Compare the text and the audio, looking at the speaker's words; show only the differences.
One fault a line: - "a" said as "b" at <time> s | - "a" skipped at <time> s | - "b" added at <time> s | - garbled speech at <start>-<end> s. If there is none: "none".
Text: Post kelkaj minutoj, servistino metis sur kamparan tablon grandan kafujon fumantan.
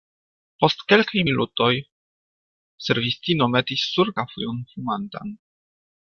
- "kamparan tablon grandan" skipped at 4.1 s